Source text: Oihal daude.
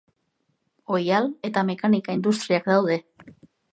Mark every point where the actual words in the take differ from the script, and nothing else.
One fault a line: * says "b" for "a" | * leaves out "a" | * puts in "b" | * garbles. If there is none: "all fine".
* puts in "eta mekanika industriak"